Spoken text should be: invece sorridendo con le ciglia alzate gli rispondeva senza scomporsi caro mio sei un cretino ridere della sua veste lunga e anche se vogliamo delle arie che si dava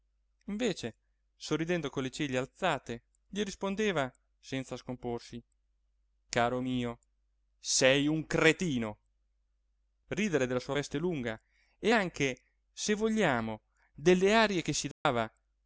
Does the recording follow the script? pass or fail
pass